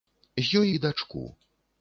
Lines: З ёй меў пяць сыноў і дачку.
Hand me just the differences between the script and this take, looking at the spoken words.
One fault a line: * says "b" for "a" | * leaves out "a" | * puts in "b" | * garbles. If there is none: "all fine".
* leaves out "меў пяць сыноў"